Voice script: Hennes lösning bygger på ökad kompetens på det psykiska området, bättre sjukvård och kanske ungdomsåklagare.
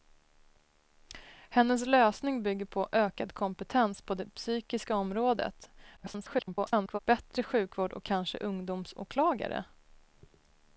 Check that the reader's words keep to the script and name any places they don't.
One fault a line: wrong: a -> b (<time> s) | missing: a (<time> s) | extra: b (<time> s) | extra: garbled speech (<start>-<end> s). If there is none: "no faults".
extra: garbled speech (6.0-7.0 s)